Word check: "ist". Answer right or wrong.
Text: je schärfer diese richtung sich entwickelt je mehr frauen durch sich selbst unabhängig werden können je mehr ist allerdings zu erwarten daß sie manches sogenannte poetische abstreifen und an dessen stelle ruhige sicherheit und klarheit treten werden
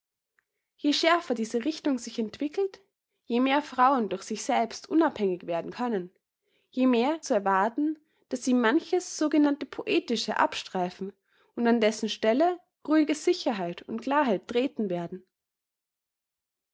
wrong